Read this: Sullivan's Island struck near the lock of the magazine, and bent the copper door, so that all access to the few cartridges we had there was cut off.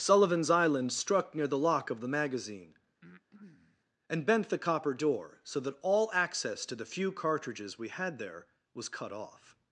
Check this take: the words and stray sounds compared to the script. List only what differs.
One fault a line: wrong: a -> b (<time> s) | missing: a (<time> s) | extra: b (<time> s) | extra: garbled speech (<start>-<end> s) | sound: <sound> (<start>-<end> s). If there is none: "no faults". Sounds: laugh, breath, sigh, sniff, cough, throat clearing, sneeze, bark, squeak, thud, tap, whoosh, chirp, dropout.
sound: breath (3.0-3.8 s)